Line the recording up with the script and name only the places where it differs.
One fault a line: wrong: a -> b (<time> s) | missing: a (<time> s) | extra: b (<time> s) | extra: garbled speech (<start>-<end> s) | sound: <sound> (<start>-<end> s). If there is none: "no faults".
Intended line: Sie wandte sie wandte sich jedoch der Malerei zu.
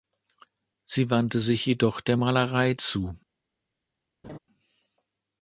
missing: sie wandte (1.4 s)
sound: laugh (4.2-4.4 s)